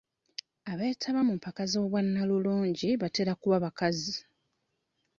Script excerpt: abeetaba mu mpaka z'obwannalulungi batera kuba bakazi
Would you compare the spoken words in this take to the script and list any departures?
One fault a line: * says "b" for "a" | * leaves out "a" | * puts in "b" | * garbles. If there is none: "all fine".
all fine